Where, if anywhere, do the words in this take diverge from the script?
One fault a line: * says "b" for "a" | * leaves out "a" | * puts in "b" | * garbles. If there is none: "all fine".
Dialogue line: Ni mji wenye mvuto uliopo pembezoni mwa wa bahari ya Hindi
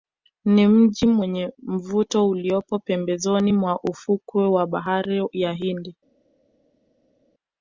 * puts in "ufukwe"